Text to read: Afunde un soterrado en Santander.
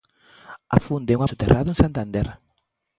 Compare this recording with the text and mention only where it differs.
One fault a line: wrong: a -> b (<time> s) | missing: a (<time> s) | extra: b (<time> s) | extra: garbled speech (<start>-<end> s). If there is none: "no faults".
no faults